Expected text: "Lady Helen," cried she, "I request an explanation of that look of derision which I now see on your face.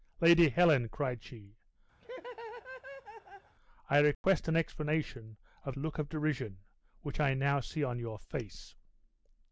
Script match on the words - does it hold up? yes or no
no